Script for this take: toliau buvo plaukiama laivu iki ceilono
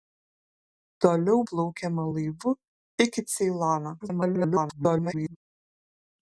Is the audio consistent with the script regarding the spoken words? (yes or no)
no